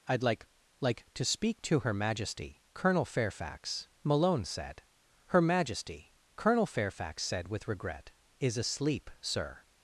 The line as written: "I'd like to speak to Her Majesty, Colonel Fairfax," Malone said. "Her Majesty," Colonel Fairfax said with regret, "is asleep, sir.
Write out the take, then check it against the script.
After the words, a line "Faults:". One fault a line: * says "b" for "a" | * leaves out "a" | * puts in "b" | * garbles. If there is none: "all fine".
"I'd like like to speak to Her Majesty, Colonel Fairfax," Malone said. "Her Majesty," Colonel Fairfax said with regret, "is asleep, sir.
Faults:
* puts in "like"